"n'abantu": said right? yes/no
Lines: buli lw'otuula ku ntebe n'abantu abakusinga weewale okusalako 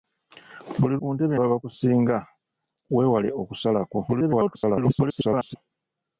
no